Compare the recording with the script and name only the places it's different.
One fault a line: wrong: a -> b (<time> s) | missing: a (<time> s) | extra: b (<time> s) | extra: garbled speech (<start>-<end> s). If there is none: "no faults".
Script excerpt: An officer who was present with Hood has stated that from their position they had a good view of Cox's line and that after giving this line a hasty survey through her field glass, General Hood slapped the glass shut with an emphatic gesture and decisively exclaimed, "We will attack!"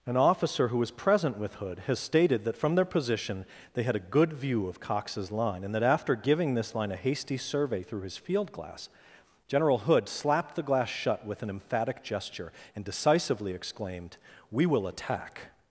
wrong: her -> his (8.0 s)